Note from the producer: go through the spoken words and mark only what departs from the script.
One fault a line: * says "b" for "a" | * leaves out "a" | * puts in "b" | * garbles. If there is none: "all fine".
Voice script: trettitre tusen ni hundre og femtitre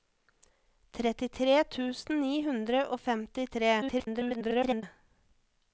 * garbles